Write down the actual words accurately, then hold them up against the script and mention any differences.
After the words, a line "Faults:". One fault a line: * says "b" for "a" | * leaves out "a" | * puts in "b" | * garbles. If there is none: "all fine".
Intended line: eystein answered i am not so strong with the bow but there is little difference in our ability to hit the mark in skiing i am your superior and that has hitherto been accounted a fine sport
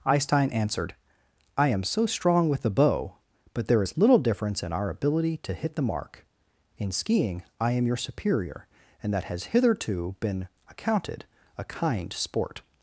eystein answered i am so strong with the bow but there is little difference in our ability to hit the mark in skiing i am your superior and that has hitherto been accounted a kind sport
Faults:
* leaves out "not"
* says "kind" for "fine"